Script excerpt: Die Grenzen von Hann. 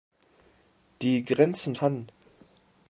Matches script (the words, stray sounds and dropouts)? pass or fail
fail